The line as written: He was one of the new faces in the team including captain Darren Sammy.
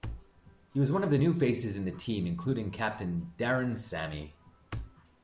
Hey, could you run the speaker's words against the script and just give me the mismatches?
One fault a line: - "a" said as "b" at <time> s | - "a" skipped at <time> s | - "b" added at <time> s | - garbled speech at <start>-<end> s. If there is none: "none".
none